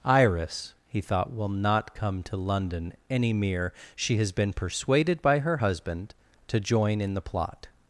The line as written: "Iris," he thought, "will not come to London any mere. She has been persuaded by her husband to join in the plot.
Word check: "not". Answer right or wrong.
right